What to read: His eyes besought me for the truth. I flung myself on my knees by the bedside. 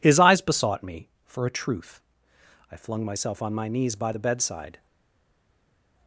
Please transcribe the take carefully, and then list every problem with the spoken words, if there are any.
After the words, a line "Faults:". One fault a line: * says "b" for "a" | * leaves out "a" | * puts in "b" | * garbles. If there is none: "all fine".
His eyes besought me for a truth. I flung myself on my knees by the bedside.
Faults:
* says "a" for "the"